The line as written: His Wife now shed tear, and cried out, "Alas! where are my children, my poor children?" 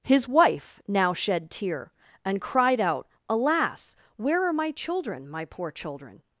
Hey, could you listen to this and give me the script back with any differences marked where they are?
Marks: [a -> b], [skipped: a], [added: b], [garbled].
His Wife now shed tear, and cried out, "Alas! where are my children, my poor children?"